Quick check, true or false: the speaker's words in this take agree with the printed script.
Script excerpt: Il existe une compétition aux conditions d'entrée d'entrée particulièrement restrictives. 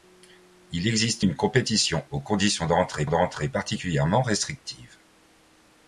true